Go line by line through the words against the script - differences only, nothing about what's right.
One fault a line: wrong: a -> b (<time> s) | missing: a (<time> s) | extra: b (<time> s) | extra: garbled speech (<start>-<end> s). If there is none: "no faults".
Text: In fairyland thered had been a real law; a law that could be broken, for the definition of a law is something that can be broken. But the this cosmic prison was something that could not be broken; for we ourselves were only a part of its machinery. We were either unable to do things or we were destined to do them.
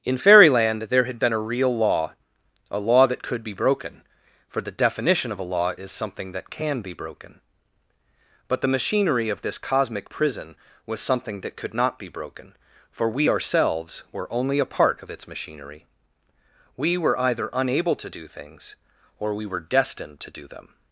wrong: thered -> there (0.8 s)
extra: machinery of (8.8 s)